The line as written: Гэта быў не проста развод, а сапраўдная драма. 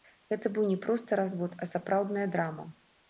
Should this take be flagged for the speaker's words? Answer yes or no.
no